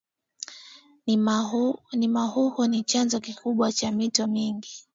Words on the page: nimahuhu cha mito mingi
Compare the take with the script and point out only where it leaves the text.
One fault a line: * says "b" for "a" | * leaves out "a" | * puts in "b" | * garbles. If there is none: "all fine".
* puts in "ni chanzo kikubwa"